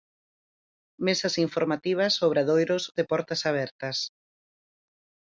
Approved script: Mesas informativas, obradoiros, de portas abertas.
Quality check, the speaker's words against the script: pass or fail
pass